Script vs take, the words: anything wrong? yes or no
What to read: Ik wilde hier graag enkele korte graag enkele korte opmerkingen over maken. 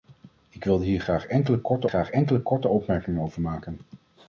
no